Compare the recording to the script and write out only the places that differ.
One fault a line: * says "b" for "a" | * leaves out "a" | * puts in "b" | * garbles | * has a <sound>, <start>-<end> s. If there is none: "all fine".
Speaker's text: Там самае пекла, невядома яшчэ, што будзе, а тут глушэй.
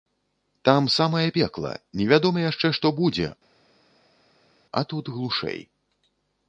all fine